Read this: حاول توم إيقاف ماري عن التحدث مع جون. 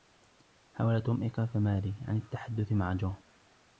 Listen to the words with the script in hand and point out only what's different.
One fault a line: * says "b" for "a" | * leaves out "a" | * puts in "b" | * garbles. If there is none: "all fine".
all fine